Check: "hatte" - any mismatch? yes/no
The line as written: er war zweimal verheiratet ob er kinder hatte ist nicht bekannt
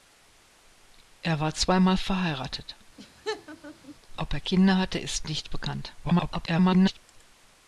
no